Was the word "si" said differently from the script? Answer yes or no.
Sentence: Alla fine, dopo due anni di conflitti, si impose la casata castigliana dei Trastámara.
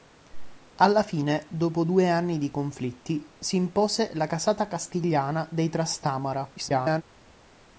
no